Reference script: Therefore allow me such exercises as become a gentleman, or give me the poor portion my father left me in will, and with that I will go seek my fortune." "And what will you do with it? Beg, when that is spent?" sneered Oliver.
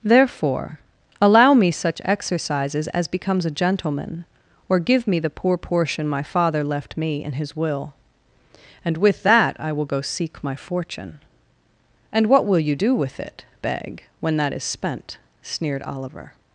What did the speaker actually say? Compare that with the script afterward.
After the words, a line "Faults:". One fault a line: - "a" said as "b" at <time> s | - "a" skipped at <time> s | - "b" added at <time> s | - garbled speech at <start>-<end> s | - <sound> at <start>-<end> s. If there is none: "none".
Therefore allow me such exercises as becomes a gentleman, or give me the poor portion my father left me in his will, and with that I will go seek my fortune." "And what will you do with it? Beg, when that is spent?" sneered Oliver.
Faults:
- "become" said as "becomes" at 3.1 s
- "his" added at 7.3 s